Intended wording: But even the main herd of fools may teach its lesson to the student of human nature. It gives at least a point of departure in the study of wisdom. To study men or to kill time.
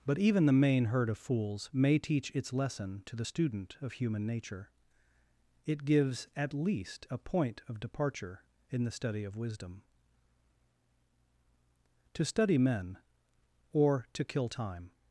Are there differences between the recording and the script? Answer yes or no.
no